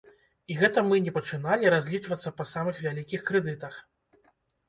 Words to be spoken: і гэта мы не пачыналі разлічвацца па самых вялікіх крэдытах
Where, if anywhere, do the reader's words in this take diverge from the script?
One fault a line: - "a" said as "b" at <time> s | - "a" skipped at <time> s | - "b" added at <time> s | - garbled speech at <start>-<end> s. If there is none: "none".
none